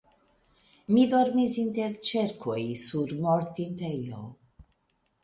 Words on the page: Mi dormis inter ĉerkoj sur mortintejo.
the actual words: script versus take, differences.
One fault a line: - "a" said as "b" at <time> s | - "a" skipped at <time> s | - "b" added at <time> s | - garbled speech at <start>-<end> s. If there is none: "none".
none